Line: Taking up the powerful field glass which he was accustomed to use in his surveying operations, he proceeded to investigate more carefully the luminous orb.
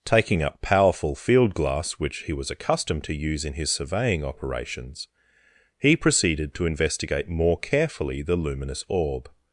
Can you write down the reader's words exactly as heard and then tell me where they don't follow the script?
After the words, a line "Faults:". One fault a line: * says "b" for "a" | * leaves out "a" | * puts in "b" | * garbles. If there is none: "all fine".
Taking up powerful field glass which he was accustomed to use in his surveying operations, he proceeded to investigate more carefully the luminous orb.
Faults:
* leaves out "the"